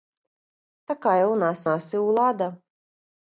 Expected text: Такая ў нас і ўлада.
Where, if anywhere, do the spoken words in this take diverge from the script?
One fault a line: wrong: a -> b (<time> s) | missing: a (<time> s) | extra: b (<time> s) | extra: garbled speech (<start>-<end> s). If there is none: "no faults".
extra: нас (1.7 s)